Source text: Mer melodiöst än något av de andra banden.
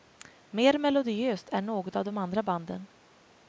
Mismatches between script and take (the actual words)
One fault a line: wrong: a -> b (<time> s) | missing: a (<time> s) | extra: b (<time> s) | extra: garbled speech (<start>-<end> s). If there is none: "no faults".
no faults